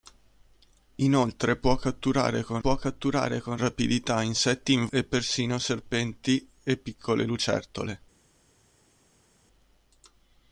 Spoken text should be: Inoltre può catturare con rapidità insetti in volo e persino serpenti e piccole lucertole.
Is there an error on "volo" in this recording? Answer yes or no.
yes